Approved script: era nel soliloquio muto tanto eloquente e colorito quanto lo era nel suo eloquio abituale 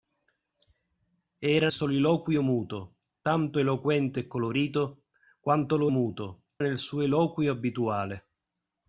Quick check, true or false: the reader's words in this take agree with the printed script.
false